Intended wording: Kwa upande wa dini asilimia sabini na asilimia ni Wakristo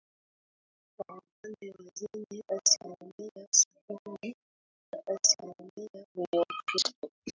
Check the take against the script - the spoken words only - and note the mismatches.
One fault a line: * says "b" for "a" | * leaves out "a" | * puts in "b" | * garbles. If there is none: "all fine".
all fine